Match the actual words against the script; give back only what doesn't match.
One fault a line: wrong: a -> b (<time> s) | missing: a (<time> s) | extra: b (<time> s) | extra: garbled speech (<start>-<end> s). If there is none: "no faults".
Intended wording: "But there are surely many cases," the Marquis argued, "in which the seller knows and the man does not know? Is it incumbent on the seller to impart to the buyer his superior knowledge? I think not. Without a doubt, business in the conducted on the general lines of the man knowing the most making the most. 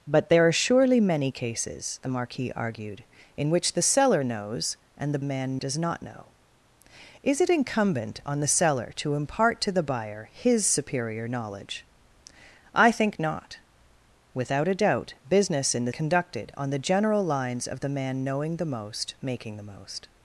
no faults